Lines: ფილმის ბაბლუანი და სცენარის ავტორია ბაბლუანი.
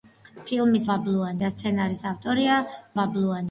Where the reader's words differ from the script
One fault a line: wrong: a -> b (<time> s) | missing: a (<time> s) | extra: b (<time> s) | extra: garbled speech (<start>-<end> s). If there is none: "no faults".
no faults